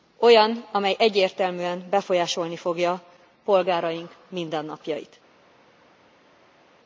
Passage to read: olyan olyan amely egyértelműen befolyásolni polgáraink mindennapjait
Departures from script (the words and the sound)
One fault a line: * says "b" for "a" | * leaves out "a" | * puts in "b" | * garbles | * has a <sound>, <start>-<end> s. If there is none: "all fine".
* leaves out "olyan"
* puts in "fogja"